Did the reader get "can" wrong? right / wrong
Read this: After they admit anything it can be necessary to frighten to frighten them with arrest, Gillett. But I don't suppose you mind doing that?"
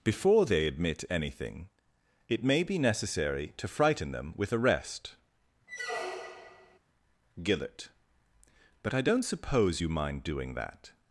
wrong